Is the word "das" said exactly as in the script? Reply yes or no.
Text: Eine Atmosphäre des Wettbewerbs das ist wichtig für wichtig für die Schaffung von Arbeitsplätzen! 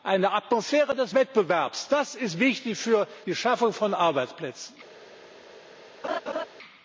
yes